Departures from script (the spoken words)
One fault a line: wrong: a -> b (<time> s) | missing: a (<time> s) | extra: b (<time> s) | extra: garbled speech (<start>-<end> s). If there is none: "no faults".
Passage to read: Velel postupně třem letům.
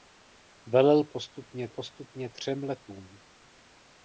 extra: postupně (1.7 s)